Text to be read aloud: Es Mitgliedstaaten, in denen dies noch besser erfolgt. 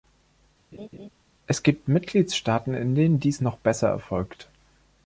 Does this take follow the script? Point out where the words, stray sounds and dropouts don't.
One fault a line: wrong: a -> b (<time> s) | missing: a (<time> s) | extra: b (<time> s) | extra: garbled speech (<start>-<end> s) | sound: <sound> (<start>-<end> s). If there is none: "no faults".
sound: laugh (0.7-1.1 s)
extra: gibt (1.6 s)